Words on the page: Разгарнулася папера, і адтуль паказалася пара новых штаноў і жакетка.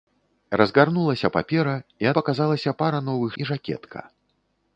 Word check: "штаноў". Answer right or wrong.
wrong